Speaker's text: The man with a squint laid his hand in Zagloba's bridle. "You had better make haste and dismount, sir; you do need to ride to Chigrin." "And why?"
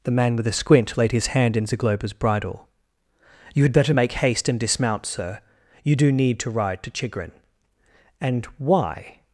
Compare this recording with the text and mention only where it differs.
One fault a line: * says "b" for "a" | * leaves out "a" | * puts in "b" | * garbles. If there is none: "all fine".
all fine